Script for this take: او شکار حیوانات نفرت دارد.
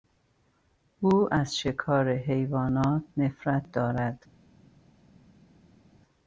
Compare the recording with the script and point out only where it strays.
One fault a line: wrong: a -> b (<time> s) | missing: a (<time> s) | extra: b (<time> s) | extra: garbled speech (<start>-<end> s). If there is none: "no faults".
extra: از (1.3 s)